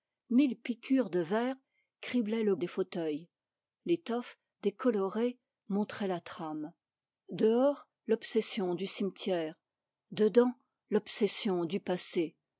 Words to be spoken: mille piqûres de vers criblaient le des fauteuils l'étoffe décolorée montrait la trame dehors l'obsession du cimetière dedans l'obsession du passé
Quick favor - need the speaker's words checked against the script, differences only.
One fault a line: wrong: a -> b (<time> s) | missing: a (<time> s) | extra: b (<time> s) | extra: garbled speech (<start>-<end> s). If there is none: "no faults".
no faults